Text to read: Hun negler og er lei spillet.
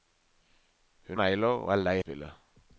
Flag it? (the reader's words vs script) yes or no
no